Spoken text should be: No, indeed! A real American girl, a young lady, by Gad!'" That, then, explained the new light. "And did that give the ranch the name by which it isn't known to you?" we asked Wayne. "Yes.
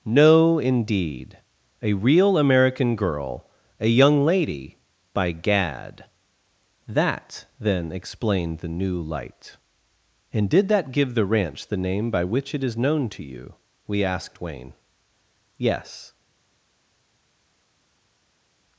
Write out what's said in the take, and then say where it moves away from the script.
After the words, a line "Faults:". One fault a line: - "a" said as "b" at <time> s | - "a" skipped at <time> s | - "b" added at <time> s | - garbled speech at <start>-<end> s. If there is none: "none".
No, indeed! A real American girl, a young lady, by Gad!'" That, then, explained the new light. "And did that give the ranch the name by which it is known to you?" we asked Wayne. "Yes.
Faults:
- "isn't" said as "is" at 12.6 s